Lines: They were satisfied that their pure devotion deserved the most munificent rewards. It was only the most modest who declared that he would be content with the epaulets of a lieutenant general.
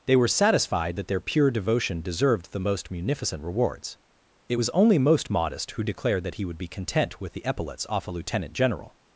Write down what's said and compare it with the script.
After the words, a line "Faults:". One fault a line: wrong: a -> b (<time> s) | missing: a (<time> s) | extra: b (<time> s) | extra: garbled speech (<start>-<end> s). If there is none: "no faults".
They were satisfied that their pure devotion deserved the most munificent rewards. It was only most modest who declared that he would be content with the epaulets off a lieutenant general.
Faults:
missing: the (5.0 s)
wrong: of -> off (7.9 s)